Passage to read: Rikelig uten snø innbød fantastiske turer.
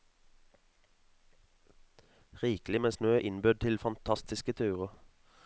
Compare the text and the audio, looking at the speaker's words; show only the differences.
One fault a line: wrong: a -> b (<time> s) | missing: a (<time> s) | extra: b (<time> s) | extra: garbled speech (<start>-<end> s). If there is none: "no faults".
wrong: uten -> med (2.8 s)
extra: til (3.5 s)